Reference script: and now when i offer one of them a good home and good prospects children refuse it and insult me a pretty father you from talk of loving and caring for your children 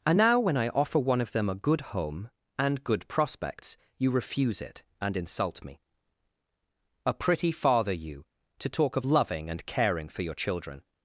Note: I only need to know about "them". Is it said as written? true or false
true